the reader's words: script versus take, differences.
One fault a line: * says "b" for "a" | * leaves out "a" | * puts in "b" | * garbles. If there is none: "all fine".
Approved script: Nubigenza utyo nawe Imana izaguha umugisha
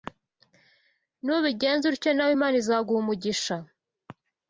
all fine